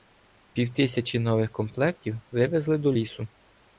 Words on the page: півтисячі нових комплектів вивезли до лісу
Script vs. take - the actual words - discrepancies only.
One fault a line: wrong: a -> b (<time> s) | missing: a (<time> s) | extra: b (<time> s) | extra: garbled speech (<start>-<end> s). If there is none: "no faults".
no faults